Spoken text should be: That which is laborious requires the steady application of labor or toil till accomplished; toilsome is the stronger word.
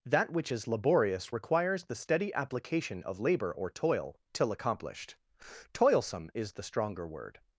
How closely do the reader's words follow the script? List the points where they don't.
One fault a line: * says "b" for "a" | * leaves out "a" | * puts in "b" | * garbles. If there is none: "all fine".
all fine